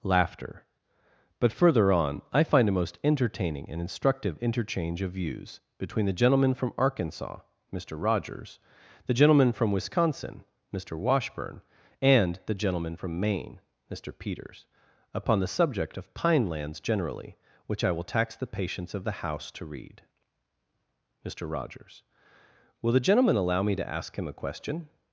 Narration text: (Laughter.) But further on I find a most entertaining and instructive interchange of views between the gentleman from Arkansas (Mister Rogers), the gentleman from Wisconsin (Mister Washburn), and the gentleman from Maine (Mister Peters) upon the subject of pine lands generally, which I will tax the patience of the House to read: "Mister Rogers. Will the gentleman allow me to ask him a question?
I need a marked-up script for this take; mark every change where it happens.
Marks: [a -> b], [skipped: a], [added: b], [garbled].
(Laughter.) But further on I find a most entertaining and instructive interchange of views between the gentleman from Arkansas (Mister Rogers), the gentleman from Wisconsin (Mister Washburn), and the gentleman from Maine (Mister Peters) upon the subject of pine lands generally, which I will tax the patience of the House to read: "Mister Rogers. Will the gentleman allow me to ask him a question?